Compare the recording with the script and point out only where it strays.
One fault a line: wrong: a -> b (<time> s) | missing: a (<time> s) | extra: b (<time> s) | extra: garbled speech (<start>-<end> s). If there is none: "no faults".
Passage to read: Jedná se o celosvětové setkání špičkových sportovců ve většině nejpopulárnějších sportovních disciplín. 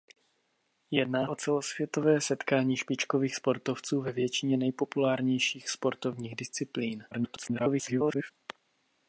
missing: se (1.3 s)
extra: garbled speech (7.1-8.3 s)